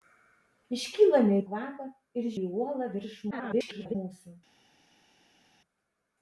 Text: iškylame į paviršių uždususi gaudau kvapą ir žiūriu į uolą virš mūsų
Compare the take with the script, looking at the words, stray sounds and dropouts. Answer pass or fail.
fail